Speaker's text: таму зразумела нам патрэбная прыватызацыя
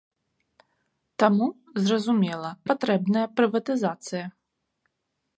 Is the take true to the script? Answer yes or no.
no